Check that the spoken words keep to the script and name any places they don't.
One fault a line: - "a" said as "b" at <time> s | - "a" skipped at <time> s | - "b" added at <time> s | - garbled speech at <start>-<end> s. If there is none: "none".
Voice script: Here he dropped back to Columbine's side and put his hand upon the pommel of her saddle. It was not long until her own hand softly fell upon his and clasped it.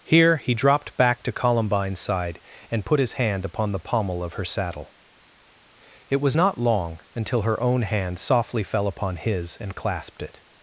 none